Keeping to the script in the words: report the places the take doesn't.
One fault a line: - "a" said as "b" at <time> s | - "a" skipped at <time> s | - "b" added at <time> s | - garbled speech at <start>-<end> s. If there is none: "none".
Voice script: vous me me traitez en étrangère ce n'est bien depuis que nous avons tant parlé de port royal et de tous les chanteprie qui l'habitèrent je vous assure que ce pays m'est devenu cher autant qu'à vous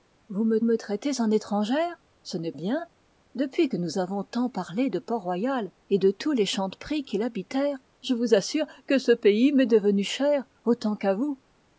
none